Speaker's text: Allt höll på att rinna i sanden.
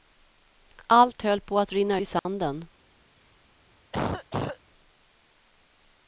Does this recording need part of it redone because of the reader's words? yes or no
no